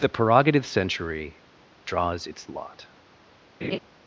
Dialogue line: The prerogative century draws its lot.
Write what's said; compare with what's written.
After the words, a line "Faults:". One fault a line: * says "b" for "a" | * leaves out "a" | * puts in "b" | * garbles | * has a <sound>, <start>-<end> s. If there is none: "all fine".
The prerogative century draws its lot.
Faults:
* has a laugh, 3.6-3.8 s